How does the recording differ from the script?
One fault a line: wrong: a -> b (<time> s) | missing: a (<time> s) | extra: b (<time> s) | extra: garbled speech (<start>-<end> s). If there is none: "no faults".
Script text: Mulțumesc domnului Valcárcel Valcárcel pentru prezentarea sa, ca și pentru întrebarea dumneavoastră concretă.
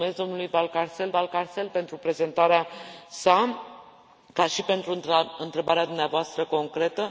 no faults